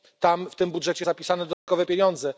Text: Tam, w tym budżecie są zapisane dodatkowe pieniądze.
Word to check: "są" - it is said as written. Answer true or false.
false